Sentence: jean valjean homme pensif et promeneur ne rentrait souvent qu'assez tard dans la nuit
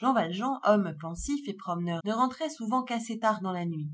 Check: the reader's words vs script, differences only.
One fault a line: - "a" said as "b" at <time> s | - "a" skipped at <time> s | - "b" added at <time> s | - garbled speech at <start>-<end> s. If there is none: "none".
none